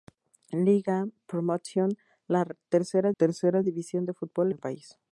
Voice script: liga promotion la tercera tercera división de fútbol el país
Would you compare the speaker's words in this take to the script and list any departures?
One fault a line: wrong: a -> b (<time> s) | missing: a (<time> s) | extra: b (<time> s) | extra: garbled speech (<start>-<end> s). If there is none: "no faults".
no faults